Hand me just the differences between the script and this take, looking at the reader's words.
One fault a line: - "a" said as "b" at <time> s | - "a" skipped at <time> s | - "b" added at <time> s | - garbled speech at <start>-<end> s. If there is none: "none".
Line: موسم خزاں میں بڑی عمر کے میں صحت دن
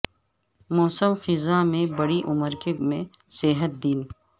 none